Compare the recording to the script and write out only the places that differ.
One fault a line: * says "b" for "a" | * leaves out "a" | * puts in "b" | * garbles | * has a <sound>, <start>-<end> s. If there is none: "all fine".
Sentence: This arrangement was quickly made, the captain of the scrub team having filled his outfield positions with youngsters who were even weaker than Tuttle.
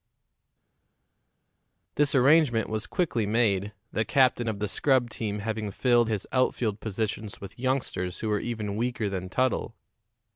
all fine